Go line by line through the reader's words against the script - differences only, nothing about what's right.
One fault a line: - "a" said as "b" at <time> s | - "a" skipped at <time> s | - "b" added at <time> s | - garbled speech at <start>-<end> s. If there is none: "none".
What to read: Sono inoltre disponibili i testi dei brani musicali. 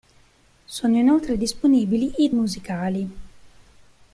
- "testi dei brani" skipped at 2.3 s